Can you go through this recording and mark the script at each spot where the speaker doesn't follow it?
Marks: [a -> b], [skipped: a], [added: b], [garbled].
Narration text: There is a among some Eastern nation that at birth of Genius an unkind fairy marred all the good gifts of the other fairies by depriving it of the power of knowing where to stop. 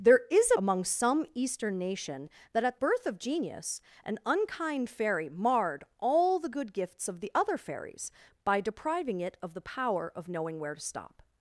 There is a among some Eastern nation that at birth of Genius an unkind fairy marred all the good gifts of the other fairies by depriving it of the power of knowing where to stop.